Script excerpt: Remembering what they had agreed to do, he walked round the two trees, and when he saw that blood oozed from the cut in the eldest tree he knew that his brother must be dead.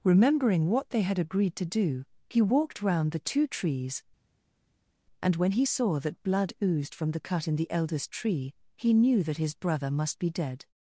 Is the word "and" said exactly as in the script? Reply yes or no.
yes